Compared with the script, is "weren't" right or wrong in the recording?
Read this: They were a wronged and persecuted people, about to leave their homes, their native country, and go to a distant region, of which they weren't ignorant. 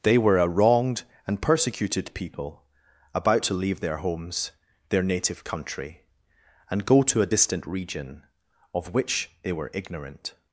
wrong